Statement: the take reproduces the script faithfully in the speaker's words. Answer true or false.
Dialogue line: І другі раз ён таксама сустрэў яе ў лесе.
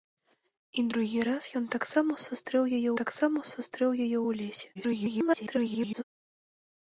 false